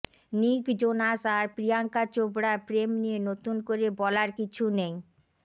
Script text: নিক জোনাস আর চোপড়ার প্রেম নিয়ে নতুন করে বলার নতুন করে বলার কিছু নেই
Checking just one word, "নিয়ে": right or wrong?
right